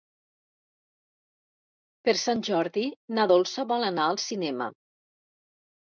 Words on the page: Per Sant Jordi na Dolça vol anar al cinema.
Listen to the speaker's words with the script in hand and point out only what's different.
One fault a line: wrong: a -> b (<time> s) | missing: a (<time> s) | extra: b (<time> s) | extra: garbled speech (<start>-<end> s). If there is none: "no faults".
no faults